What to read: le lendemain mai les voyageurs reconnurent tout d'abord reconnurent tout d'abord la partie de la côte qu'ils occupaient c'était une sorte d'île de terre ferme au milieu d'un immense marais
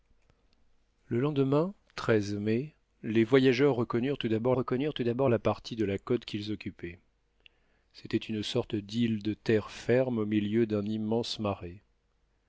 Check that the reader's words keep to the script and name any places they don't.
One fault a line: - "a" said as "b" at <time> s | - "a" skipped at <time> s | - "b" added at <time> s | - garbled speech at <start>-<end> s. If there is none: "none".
none